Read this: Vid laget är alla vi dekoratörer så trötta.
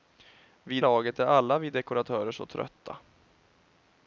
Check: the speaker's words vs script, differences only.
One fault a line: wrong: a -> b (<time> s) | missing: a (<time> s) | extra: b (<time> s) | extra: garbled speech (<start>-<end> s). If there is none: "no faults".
no faults